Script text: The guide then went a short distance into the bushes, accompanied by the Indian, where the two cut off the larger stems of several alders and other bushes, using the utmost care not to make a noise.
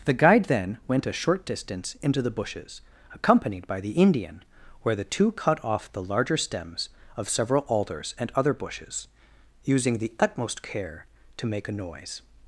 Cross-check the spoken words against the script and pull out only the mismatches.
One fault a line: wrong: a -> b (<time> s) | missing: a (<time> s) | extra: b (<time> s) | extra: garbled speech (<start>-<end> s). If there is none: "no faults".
missing: not (11.1 s)